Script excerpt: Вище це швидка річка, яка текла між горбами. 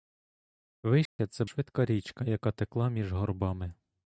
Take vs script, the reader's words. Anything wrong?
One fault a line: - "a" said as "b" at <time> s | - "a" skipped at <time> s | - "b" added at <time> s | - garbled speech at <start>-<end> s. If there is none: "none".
none